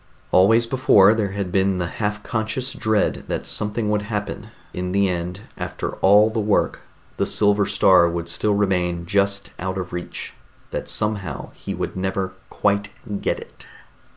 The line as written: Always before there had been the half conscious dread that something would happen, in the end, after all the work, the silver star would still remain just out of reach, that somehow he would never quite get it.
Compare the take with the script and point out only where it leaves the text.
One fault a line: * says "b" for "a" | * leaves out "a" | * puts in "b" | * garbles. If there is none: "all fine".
all fine